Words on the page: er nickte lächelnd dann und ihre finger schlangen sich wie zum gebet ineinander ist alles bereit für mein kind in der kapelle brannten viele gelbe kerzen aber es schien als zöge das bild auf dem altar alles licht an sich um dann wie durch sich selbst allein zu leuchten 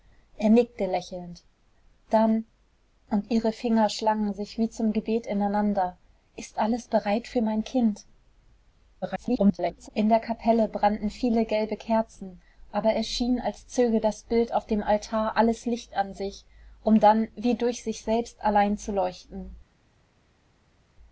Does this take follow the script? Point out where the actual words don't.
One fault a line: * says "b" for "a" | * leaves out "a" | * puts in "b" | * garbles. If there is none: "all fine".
* garbles